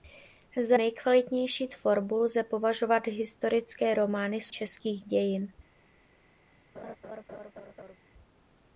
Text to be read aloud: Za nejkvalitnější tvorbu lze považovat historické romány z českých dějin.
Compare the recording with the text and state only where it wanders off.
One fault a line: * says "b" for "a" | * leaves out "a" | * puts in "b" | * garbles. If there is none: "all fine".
all fine